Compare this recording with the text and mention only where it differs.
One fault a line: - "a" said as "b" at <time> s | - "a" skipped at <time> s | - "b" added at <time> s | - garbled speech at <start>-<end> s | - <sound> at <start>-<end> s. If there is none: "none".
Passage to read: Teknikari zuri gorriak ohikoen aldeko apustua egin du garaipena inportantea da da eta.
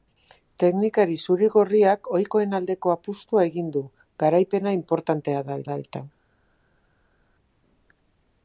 none